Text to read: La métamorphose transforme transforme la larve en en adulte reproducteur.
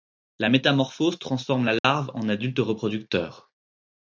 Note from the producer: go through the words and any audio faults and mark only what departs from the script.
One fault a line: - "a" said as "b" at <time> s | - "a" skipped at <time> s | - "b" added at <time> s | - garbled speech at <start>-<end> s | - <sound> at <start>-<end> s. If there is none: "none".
- "transforme" skipped at 1.6 s
- dropout at 1.8-1.8 s
- "en" skipped at 2.3 s